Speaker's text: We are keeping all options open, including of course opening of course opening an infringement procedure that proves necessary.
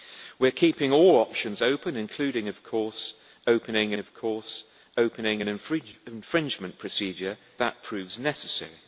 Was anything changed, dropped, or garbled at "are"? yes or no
no